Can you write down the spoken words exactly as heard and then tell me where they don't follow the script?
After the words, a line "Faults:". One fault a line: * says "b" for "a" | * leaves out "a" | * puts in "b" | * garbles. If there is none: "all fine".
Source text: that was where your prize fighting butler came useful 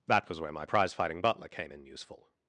that was where my prize fighting butler came in useful
Faults:
* says "my" for "your"
* puts in "in"